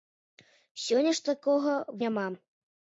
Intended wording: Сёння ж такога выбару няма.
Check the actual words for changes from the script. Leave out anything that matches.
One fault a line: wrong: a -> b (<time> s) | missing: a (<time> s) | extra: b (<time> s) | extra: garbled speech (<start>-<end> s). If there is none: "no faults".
missing: выбару (1.7 s)